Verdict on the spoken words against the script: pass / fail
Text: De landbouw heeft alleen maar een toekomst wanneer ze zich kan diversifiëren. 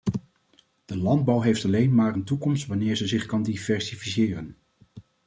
pass